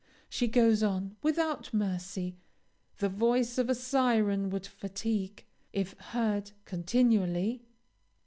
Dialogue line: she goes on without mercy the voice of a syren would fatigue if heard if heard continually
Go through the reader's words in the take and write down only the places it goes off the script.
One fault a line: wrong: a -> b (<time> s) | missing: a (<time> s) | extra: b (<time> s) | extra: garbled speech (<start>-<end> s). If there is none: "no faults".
missing: if heard (6.5 s)